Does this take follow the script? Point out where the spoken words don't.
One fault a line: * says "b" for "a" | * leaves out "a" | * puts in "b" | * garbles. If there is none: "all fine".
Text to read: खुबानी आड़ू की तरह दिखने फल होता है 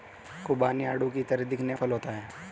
all fine